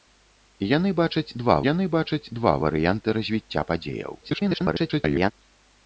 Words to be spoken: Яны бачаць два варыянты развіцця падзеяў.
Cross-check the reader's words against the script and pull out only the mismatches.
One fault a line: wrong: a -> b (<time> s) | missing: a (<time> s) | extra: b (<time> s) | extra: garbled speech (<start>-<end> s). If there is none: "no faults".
extra: яны бачаць два (1.7 s)
extra: garbled speech (4.2-5.3 s)